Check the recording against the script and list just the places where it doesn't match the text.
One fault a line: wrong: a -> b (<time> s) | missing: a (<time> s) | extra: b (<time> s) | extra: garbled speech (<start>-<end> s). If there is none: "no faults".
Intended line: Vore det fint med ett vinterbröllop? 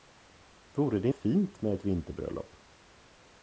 no faults